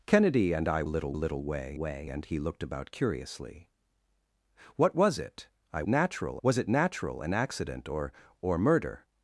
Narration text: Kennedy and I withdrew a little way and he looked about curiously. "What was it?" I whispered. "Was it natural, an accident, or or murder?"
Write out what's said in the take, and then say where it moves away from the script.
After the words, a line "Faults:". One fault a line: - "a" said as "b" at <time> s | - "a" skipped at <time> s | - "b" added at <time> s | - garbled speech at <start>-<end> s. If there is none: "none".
Kennedy and I little a little way way and he looked about curiously. "What was it?" I natural. "Was it natural, an accident, or or murder?"
Faults:
- "withdrew" said as "little" at 0.8 s
- "way" added at 1.8 s
- "whispered" said as "natural" at 5.9 s